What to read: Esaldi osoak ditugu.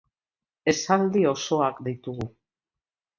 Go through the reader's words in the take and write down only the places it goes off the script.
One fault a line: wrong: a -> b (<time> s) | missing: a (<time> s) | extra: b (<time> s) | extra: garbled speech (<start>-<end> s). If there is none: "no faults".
no faults